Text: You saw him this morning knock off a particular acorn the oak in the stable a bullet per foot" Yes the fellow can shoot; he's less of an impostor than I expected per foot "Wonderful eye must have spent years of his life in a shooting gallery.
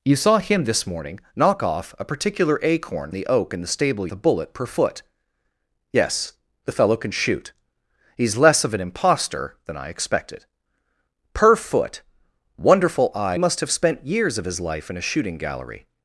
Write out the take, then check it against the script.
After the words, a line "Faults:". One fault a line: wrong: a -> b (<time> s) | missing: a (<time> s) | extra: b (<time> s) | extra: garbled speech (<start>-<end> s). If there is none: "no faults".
You saw him this morning knock off a particular acorn the oak in the stable a bullet per foot" Yes the fellow can shoot; he's less of an impostor than I expected per foot "Wonderful eye must have spent years of his life in a shooting gallery.
Faults:
no faults